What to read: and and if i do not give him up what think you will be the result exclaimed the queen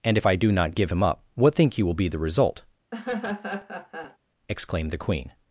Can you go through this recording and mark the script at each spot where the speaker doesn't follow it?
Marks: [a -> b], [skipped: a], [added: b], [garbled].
and [skipped: and] if i do not give him up what think you will be the result exclaimed the queen